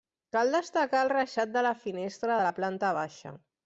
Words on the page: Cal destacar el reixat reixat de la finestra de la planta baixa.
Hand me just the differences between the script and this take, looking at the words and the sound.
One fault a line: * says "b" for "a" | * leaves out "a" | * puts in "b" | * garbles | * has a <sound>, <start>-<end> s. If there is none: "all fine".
* leaves out "reixat"